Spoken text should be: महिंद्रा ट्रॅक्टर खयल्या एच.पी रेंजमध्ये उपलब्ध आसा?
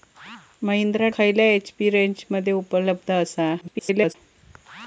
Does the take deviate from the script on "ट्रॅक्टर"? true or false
true